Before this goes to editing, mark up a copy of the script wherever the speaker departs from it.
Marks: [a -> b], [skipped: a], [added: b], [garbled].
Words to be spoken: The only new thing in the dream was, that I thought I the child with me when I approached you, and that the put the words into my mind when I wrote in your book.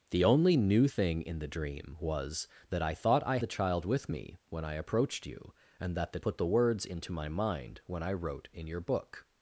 The only new thing in the dream was, that I thought I the child with me when I approached you, and that the put the words into my mind when I wrote in your book.